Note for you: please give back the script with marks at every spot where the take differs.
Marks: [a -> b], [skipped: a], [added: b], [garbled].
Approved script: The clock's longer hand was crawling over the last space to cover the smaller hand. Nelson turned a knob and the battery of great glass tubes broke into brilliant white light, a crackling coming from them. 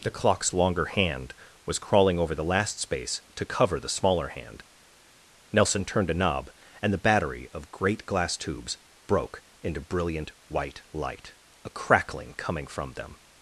The clock's longer hand was crawling over the last space to cover the smaller hand. Nelson turned a knob and the battery of great glass tubes broke into brilliant white light, a crackling coming from them.